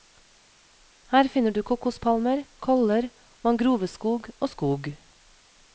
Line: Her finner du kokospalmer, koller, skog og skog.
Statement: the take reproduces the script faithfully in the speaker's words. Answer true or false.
false